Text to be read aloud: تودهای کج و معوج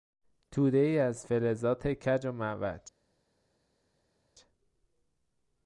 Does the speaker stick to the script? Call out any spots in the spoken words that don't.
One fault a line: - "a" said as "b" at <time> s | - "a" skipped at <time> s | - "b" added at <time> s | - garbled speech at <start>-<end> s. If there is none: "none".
- "از فلزات" added at 1.0 s